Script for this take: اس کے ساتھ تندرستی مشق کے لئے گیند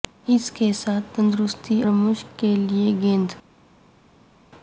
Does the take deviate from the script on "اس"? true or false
false